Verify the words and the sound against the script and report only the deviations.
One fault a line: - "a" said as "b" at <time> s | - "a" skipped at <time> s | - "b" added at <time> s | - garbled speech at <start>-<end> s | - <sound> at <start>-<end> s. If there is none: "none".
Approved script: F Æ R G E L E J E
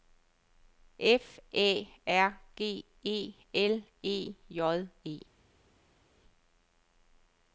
none